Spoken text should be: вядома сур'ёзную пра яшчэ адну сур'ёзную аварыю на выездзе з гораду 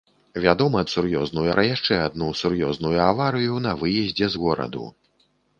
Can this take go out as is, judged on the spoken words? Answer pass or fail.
pass